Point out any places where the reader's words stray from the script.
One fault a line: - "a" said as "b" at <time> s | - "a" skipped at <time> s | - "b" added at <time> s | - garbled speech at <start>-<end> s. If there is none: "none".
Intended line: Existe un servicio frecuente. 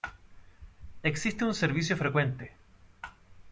none